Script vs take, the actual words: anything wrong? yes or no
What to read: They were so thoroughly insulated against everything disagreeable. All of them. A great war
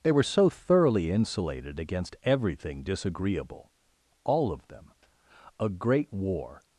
no